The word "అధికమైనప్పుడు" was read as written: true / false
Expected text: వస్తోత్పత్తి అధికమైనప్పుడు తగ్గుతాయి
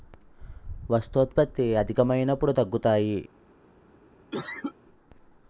true